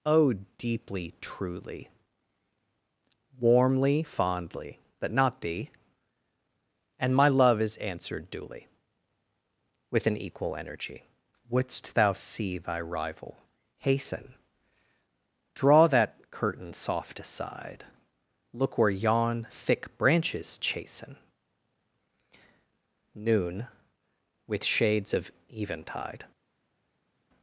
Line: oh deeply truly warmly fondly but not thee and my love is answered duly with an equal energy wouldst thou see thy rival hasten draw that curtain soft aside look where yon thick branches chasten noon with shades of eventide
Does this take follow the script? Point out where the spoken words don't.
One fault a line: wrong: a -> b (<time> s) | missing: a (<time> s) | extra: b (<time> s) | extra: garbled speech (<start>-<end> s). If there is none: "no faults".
no faults